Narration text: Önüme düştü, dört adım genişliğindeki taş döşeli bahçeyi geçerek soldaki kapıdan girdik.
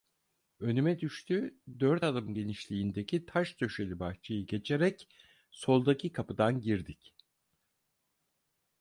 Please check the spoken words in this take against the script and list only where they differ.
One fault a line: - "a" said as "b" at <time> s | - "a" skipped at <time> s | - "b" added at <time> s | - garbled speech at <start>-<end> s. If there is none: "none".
none